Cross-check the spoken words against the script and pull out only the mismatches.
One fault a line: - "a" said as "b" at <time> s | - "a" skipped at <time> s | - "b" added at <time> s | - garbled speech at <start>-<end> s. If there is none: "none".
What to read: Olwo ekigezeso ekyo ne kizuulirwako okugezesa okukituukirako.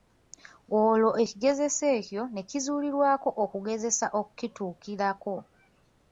none